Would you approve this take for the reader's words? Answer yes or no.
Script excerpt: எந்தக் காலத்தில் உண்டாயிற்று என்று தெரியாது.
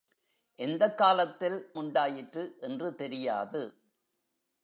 yes